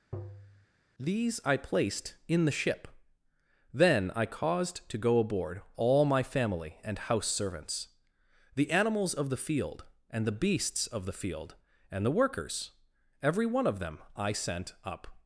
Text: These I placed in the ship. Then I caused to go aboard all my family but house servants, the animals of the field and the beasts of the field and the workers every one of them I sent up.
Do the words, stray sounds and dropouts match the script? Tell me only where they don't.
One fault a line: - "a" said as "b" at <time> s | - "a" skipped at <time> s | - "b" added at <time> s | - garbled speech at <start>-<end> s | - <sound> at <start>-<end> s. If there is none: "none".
- tap at 0.1-0.7 s
- "but" said as "and" at 6.8 s